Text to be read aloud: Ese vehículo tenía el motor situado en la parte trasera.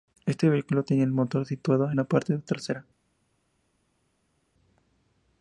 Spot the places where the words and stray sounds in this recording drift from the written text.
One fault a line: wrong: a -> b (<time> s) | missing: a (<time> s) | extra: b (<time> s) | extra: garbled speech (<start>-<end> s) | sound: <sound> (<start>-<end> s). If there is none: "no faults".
wrong: Ese -> Este (0.2 s)